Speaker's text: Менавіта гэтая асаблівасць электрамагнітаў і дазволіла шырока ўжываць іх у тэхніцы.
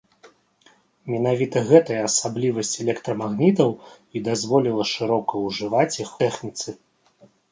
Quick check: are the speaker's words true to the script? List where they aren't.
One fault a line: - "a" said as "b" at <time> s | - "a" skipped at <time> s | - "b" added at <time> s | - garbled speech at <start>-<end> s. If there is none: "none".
- "у" skipped at 6.1 s